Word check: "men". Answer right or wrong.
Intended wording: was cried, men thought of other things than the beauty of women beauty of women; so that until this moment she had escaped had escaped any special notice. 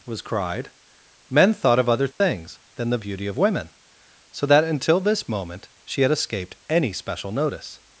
right